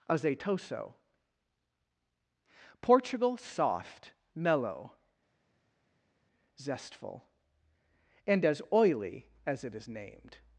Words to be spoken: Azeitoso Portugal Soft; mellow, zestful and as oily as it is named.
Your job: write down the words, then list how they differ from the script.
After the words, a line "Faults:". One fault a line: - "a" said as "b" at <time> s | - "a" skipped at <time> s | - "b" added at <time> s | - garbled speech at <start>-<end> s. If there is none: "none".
Azeitoso Portugal Soft; mellow, zestful and as oily as it is named.
Faults:
none